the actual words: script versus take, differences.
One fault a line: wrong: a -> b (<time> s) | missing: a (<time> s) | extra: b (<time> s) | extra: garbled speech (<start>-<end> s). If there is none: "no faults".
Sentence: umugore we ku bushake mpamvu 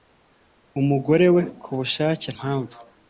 no faults